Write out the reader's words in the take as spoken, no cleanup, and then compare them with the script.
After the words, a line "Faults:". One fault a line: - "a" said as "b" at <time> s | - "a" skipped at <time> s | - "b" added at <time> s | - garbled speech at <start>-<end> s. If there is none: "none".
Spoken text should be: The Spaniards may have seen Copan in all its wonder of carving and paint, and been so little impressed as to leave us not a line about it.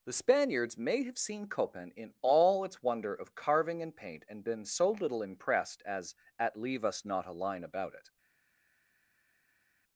The Spaniards may have seen Copan in all its wonder of carving and paint, and been so little impressed as at leave us not a line about it.
Faults:
- "to" said as "at" at 6.4 s